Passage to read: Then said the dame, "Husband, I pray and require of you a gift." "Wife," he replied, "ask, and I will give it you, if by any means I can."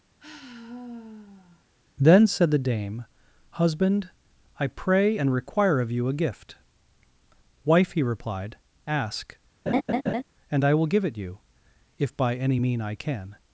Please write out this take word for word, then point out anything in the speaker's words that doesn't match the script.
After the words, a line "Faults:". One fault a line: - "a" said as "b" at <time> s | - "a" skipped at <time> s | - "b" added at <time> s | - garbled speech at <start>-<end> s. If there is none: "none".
Then said the dame, "Husband, I pray and require of you a gift." "Wife," he replied, "ask, and I will give it you, if by any mean I can."
Faults:
- "means" said as "mean" at 12.6 s